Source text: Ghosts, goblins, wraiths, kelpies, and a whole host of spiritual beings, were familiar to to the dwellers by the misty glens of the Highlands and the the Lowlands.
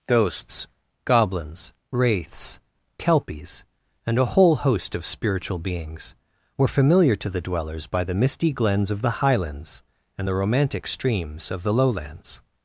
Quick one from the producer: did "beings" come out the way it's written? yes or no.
yes